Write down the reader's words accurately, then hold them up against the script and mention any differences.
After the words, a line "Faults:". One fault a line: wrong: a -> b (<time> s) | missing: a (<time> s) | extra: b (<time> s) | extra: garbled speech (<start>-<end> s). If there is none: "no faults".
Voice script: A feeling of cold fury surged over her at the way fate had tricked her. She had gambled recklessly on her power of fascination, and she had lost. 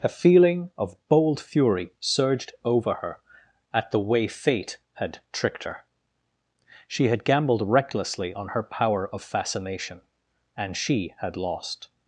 A feeling of bold fury surged over her at the way fate had tricked her. She had gambled recklessly on her power of fascination, and she had lost.
Faults:
wrong: cold -> bold (1.1 s)